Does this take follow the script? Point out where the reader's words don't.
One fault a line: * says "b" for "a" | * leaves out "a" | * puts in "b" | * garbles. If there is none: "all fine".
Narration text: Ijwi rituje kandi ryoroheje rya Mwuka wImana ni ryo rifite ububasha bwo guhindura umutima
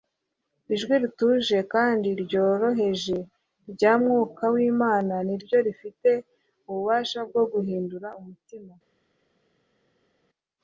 all fine